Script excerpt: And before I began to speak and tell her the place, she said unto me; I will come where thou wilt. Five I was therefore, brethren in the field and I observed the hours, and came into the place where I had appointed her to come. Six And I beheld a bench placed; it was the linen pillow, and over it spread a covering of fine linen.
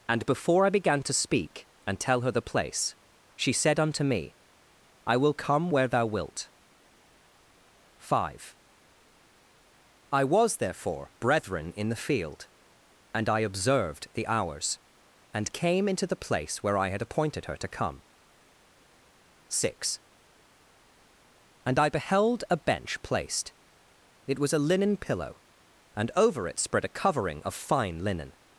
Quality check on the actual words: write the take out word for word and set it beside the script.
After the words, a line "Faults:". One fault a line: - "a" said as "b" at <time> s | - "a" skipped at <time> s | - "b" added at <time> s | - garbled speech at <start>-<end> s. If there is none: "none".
And before I began to speak and tell her the place, she said unto me; I will come where thou wilt. Five I was therefore, brethren in the field and I observed the hours, and came into the place where I had appointed her to come. Six And I beheld a bench placed; it was a linen pillow, and over it spread a covering of fine linen.
Faults:
- "the" said as "a" at 24.5 s